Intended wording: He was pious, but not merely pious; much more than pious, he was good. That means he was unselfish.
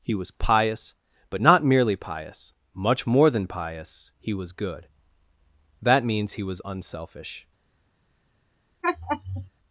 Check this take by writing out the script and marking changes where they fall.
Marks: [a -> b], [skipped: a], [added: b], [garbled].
He was pious, but not merely pious; much more than pious, he was good. That means he was unselfish.